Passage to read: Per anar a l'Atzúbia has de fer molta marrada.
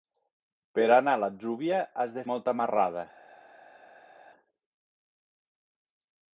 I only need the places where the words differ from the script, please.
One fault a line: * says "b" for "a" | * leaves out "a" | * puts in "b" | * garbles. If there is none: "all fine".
* leaves out "fer"